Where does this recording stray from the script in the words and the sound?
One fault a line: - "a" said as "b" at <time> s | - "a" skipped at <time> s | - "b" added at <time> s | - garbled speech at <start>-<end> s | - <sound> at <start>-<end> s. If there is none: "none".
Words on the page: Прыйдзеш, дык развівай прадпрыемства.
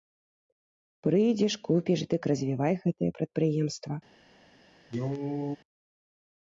- "купіш" added at 1.7 s
- "гэтае" added at 2.9 s
- cough at 4.9-5.6 s